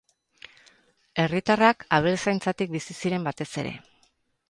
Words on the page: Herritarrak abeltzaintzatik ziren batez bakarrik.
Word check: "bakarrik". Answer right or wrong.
wrong